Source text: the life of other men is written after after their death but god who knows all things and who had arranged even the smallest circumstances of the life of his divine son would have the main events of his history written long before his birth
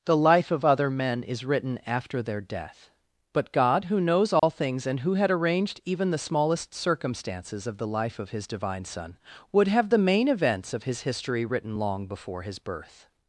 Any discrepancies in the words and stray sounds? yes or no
yes